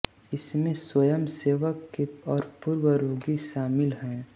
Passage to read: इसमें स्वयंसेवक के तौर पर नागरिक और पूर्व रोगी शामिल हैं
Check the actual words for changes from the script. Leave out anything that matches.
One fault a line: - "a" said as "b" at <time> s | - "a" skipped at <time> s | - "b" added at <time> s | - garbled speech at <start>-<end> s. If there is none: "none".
- "तौर पर नागरिक" skipped at 2.0 s